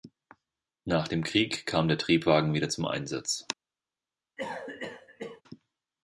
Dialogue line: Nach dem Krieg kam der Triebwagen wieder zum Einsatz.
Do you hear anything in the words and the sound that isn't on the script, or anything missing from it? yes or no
yes